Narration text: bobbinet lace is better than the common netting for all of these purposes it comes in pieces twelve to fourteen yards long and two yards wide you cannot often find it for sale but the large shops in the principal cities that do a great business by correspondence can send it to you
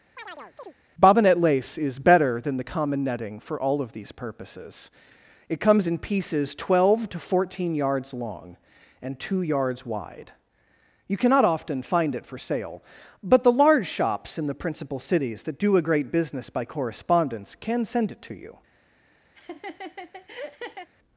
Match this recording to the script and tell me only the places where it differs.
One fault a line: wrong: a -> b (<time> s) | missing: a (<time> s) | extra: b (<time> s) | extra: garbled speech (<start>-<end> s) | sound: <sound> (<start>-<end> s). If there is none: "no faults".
sound: chirp (0.2-0.7 s)
sound: laugh (19.3-20.9 s)